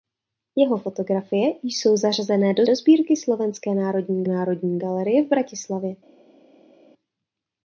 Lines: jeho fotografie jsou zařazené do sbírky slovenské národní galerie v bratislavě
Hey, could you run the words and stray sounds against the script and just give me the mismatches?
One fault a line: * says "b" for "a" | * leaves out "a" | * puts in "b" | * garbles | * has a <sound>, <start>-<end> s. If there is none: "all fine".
* puts in "do"
* puts in "národní"